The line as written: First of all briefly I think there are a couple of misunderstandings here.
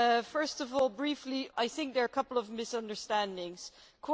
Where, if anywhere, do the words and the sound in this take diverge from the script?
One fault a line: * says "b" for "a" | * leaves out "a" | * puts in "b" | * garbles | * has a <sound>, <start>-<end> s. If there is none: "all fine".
all fine